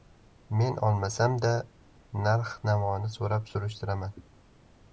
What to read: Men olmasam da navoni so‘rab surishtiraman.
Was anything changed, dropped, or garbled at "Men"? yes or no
no